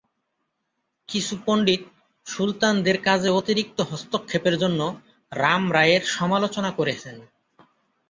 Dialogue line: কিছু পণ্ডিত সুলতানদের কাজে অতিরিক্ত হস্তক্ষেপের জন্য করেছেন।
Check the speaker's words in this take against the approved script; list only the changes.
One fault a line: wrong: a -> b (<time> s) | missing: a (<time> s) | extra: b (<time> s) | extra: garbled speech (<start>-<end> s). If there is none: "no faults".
extra: রাম রায়ের সমালোচনা (5.3 s)